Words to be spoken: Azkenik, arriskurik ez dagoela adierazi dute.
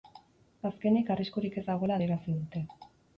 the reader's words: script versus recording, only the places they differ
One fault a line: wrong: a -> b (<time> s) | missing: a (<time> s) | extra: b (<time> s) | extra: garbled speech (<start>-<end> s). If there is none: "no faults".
no faults